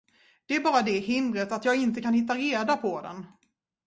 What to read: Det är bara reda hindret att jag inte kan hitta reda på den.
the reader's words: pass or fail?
fail